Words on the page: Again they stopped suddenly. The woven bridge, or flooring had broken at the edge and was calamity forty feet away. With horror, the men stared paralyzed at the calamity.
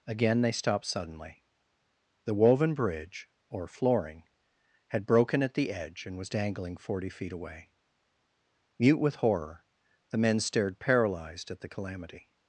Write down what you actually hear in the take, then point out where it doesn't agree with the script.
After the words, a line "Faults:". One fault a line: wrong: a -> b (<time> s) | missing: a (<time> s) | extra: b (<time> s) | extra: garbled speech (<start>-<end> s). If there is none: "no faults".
Again they stopped suddenly. The woven bridge, or flooring had broken at the edge and was dangling forty feet away. Mute with horror, the men stared paralyzed at the calamity.
Faults:
wrong: calamity -> dangling (6.3 s)
extra: Mute (8.8 s)